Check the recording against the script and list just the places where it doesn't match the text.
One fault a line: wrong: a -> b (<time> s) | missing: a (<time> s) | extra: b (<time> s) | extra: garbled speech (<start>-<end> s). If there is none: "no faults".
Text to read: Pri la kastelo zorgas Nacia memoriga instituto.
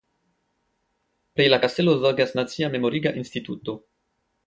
no faults